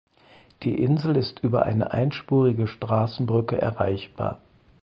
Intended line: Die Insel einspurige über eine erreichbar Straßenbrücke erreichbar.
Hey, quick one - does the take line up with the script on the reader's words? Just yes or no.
no